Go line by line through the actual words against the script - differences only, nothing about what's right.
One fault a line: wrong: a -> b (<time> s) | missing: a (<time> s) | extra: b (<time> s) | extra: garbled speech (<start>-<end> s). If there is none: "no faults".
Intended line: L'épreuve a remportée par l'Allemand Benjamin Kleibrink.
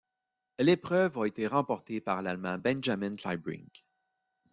extra: été (1.3 s)